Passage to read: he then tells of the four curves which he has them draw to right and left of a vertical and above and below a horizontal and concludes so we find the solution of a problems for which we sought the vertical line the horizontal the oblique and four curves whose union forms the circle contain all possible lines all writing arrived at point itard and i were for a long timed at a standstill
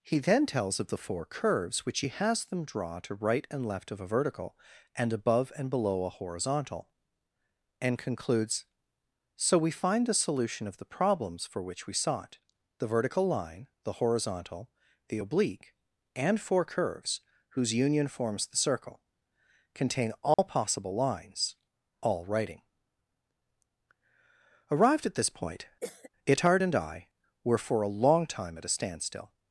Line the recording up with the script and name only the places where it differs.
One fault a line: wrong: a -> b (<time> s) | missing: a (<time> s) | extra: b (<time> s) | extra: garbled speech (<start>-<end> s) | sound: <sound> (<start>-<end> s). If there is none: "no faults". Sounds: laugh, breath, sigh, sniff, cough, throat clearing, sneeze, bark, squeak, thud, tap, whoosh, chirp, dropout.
wrong: a -> the (10.8 s)
sound: dropout (20.3-20.4 s)
extra: this (25.2 s)
sound: cough (25.8-26.1 s)
wrong: timed -> time (28.3 s)